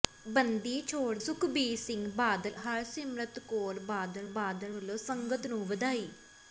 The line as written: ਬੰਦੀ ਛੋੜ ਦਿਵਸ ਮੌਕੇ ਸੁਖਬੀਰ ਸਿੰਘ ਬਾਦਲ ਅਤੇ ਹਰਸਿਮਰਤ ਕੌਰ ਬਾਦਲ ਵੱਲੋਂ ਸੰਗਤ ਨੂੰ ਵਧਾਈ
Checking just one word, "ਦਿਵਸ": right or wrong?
wrong